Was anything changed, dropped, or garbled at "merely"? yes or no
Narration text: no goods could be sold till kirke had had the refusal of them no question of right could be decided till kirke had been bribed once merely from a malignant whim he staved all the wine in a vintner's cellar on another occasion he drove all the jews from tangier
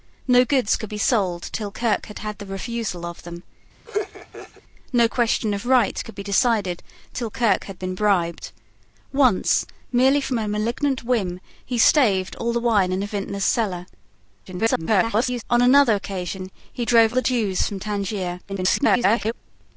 no